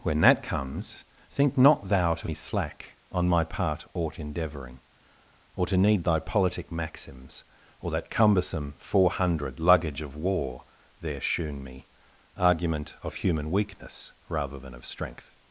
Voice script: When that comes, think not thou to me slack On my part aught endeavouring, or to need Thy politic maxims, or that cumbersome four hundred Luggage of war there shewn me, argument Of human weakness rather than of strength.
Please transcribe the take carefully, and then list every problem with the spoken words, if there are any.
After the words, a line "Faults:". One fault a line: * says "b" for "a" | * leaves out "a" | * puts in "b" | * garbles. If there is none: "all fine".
When that comes, think not thou to me slack On my part aught endeavouring, or to need Thy politic maxims, or that cumbersome four hundred Luggage of war there shewn me, argument Of human weakness rather than of strength.
Faults:
all fine